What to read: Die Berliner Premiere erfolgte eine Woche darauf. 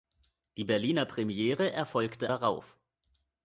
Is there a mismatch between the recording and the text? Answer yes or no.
yes